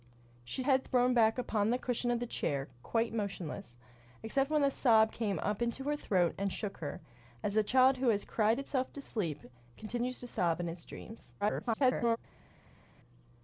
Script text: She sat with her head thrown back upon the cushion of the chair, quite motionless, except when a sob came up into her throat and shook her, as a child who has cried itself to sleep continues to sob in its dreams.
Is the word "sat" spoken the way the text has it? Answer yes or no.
no